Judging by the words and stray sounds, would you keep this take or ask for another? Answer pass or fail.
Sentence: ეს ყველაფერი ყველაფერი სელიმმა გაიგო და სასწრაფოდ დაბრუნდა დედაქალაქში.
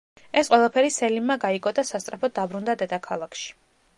fail